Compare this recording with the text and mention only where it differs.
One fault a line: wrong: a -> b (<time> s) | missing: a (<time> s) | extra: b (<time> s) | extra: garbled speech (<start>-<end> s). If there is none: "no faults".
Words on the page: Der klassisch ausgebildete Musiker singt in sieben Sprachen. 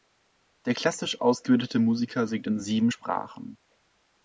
no faults